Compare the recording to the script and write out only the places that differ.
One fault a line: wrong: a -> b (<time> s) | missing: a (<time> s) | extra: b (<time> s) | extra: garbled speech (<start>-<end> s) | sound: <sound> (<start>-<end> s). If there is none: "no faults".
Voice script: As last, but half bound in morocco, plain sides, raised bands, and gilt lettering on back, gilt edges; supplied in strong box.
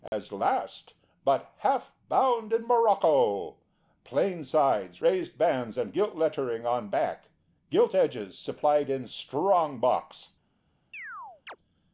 sound: dropout (0.1-0.1 s)
sound: chirp (10.9-11.6 s)